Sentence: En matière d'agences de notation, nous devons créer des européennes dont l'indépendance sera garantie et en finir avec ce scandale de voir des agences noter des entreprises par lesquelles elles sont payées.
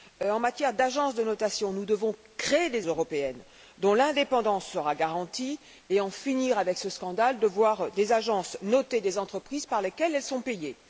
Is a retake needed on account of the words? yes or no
no